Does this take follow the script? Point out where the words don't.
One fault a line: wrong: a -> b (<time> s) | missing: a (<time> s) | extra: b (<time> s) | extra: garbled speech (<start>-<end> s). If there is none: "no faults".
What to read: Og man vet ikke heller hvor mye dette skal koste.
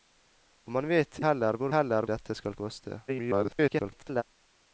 missing: ikke (1.2 s)
wrong: mye -> heller (1.7 s)
extra: garbled speech (3.1-4.2 s)